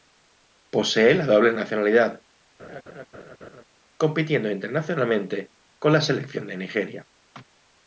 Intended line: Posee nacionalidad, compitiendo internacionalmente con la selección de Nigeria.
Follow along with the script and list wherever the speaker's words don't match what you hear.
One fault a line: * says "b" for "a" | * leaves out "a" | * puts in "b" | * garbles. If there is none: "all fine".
* puts in "la doble"